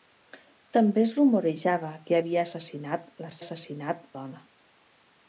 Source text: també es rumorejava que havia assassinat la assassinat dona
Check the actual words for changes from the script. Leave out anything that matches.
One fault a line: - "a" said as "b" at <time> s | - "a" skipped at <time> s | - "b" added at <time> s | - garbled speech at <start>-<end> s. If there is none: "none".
none